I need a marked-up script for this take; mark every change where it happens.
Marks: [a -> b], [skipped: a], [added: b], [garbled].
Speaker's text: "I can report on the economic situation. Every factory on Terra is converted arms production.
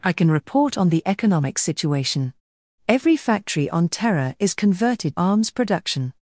"I can report on the economic situation. Every factory on Terra is converted arms production.